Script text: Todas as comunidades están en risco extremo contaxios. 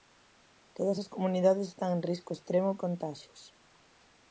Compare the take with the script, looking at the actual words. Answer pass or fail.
pass